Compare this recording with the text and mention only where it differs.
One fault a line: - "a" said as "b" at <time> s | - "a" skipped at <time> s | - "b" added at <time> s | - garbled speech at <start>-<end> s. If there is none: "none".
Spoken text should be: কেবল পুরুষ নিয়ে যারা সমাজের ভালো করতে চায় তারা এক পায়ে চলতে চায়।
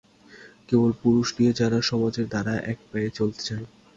- "ভালো করতে চায়" skipped at 2.2 s